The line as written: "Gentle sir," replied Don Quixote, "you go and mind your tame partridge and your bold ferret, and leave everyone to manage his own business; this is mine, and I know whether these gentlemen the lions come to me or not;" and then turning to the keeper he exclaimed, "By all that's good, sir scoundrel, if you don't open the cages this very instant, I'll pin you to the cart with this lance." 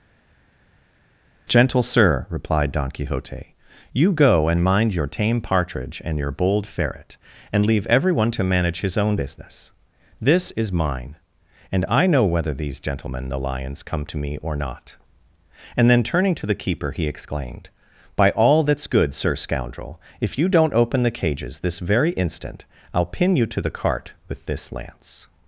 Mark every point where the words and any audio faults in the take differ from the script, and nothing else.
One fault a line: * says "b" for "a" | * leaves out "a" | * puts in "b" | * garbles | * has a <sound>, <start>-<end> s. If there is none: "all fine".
all fine